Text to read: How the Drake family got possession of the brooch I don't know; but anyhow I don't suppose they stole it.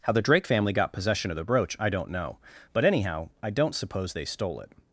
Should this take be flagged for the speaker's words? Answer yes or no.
no